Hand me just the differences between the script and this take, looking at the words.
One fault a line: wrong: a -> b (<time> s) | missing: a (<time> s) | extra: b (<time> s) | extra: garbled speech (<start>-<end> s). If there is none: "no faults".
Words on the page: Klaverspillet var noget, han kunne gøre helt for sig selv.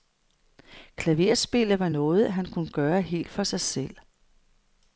no faults